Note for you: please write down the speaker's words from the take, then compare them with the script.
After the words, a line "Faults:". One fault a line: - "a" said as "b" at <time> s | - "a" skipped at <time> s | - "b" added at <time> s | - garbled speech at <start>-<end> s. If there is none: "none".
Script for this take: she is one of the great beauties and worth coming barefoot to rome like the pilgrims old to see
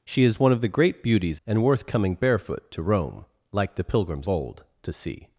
she is one of the great beauties and worth coming barefoot to rome like the pilgrims old to see
Faults:
none